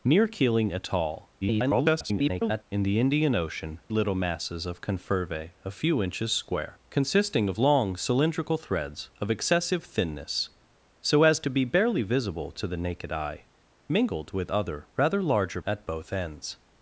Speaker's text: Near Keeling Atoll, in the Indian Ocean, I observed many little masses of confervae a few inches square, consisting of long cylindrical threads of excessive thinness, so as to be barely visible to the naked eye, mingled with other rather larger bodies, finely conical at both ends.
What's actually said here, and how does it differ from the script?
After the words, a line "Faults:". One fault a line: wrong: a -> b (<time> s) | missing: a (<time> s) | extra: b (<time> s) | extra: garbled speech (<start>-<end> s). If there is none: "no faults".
Near Keeling Atoll, [garbled] in the Indian Ocean, little masses of confervae a few inches square, consisting of long cylindrical threads of excessive thinness, so as to be barely visible to the naked eye, mingled with other rather larger at both ends.
Faults:
extra: garbled speech (1.4-2.6 s)
missing: I observed many (3.8 s)
missing: bodies finely conical (15.6 s)